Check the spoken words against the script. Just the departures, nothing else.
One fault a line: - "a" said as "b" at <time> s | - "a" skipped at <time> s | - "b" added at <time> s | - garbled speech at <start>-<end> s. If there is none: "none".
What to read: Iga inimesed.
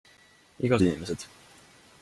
none